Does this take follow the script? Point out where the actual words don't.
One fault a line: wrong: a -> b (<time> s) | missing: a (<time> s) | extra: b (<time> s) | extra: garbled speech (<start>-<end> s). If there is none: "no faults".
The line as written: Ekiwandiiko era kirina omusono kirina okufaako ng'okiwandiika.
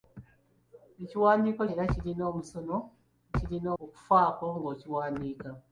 no faults